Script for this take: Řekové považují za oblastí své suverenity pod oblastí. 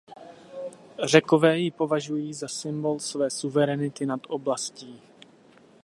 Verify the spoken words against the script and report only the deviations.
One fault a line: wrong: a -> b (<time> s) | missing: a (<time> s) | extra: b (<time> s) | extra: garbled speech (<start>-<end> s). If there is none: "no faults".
extra: ji (1.6 s)
wrong: oblastí -> symbol (2.5 s)
wrong: pod -> nad (4.1 s)